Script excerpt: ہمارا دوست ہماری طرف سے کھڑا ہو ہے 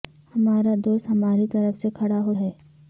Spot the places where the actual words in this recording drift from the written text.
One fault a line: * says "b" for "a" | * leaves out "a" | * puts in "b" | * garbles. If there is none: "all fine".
all fine